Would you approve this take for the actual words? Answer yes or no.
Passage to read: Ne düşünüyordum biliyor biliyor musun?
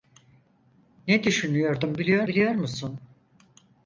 yes